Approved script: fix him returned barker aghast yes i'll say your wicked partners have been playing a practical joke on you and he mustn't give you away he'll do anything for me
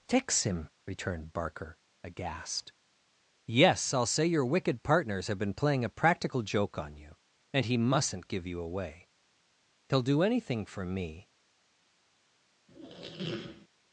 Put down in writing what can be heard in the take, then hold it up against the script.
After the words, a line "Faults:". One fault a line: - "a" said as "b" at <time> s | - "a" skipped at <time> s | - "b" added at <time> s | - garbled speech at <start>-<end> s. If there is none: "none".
fix him returned barker aghast yes i'll say your wicked partners have been playing a practical joke on you and he mustn't give you away he'll do anything for me
Faults:
none